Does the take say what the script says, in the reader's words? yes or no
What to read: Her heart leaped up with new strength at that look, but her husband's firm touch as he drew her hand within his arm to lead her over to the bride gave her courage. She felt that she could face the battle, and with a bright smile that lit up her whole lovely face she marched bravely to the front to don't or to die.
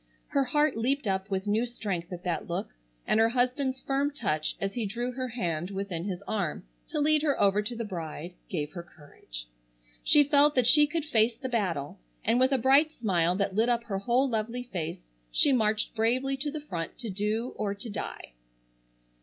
no